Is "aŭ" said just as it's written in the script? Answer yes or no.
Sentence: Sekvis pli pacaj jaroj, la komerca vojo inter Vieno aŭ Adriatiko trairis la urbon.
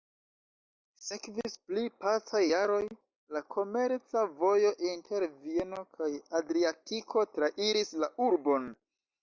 no